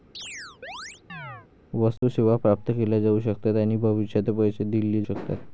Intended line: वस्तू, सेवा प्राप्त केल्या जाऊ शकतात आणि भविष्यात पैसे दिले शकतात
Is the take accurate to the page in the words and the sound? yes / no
no